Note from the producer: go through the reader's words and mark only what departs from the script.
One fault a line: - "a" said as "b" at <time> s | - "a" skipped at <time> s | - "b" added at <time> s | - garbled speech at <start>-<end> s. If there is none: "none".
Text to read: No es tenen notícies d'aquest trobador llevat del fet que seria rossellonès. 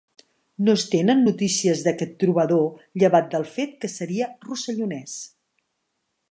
none